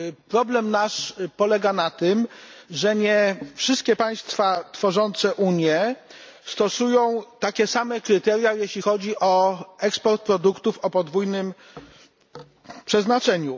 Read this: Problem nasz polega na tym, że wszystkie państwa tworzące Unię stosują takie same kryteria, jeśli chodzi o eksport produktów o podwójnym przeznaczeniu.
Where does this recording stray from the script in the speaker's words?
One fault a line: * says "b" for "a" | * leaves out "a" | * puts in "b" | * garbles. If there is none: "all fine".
* puts in "nie"